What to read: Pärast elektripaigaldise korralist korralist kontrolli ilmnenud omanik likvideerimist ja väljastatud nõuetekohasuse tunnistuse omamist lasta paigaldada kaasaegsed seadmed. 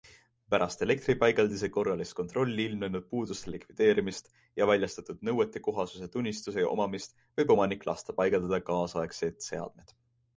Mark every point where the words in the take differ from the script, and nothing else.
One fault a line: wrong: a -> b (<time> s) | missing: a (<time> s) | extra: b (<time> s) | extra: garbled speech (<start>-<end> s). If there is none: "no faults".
missing: korralist (2.1 s)
wrong: omanik -> puuduste (3.1 s)
extra: võib omanik (7.4 s)